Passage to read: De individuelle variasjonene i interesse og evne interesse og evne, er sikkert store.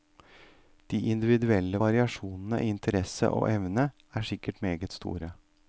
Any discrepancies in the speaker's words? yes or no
yes